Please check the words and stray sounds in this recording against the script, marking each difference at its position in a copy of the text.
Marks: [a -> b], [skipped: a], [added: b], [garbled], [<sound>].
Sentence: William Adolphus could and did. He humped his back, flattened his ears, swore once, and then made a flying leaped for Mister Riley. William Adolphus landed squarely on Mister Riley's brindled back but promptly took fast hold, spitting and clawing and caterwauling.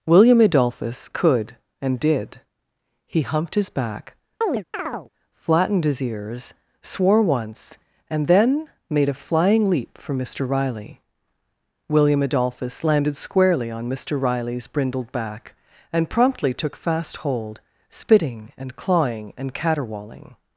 William Adolphus could and did. He humped his back, [chirp] flattened his ears, swore once, and then made a flying [leaped -> leap] for Mister Riley. William Adolphus landed squarely on Mister Riley's brindled back [but -> and] promptly took fast hold, spitting and clawing and caterwauling.